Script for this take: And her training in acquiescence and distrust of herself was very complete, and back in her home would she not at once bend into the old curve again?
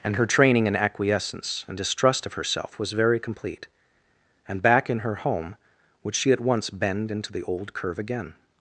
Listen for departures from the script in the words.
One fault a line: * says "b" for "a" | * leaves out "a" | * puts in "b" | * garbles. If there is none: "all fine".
* leaves out "not"